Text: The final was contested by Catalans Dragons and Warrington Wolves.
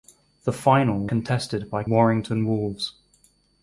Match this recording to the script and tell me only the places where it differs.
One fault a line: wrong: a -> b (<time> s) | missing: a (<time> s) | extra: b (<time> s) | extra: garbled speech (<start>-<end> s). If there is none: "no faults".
missing: was (1.1 s)
missing: Catalans Dragons and (1.8 s)